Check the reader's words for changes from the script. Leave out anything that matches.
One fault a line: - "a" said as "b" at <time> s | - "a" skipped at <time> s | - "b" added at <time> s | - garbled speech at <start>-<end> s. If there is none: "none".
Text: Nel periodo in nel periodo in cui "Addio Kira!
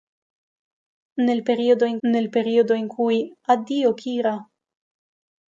none